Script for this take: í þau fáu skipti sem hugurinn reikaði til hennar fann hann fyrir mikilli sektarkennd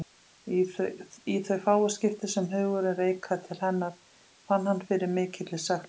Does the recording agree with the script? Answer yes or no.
yes